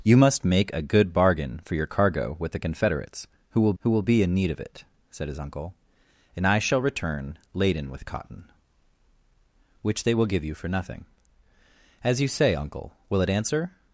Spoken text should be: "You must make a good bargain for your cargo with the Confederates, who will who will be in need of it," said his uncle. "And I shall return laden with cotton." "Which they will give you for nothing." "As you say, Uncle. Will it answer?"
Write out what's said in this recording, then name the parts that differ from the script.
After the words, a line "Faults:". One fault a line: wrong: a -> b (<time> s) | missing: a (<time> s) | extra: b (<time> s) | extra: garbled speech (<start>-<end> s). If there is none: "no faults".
"You must make a good bargain for your cargo with the Confederates, who will who will be in need of it," said his uncle. "And I shall return laden with cotton." "Which they will give you for nothing." "As you say, Uncle. Will it answer?"
Faults:
no faults